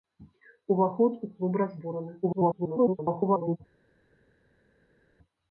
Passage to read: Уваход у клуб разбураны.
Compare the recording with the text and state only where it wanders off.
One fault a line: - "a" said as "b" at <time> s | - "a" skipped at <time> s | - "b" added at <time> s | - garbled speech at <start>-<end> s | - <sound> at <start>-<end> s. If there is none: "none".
- garbled speech at 2.2-3.6 s